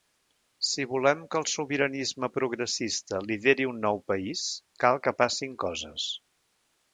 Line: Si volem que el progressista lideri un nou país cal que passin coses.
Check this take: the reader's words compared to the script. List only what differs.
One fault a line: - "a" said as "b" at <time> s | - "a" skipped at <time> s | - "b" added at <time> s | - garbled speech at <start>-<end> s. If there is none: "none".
- "sobiranisme" added at 1.5 s